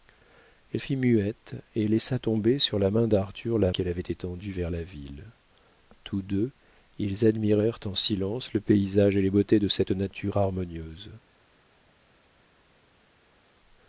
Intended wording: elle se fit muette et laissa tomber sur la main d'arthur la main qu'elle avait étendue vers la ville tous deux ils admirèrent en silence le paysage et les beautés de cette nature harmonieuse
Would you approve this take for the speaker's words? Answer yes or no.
no